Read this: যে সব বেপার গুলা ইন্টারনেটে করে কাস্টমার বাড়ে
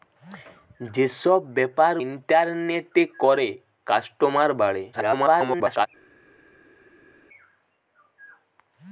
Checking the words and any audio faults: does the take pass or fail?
fail